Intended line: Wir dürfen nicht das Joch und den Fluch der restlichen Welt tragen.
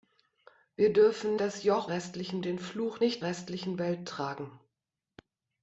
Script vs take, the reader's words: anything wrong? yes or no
yes